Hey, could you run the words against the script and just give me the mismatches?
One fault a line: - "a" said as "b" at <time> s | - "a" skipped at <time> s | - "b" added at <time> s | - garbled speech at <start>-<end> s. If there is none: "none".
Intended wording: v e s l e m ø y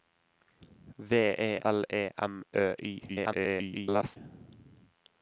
- "s" skipped at 1.6 s
- garbled speech at 3.1-4.2 s